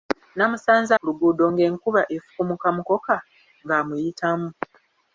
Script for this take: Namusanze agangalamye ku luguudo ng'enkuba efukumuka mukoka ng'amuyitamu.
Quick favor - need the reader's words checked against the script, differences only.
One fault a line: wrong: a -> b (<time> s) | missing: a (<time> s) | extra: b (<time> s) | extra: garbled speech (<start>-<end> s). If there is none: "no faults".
missing: agangalamye (0.9 s)